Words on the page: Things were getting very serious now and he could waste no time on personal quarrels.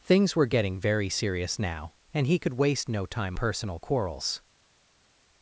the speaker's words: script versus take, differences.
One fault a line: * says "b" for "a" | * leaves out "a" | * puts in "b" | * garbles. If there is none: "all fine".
* leaves out "on"